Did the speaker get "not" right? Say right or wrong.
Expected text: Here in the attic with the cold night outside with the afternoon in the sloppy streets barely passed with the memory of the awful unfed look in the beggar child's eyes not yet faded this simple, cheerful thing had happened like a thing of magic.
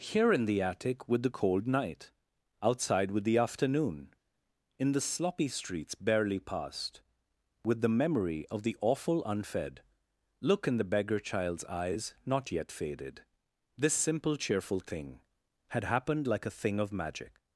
right